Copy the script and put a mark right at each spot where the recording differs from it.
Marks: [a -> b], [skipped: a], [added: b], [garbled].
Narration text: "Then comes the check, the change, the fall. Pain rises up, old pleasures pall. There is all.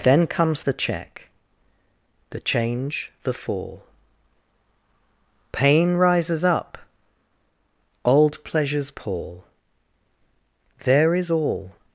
"Then comes the check, the change, the fall. Pain rises up, old pleasures pall. There is all.